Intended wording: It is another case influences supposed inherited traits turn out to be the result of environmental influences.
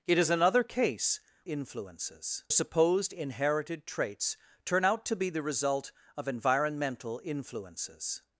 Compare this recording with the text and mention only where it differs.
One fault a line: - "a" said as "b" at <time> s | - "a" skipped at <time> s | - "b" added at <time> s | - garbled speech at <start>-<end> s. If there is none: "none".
none